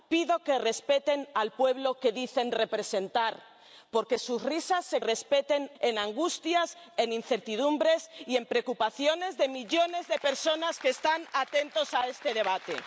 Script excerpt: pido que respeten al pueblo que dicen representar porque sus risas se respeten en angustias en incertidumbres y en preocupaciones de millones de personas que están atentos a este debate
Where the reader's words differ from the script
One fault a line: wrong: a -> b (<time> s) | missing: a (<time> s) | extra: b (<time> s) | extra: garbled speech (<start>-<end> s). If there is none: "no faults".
no faults